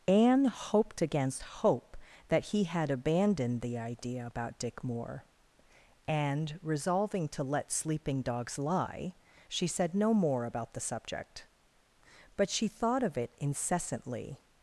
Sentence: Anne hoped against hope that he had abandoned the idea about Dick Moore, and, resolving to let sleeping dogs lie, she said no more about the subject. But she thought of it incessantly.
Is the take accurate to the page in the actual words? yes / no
yes